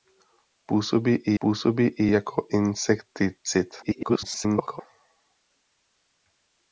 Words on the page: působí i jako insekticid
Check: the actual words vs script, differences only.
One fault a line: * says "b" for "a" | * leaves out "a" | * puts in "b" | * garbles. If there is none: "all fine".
* puts in "působí i"
* garbles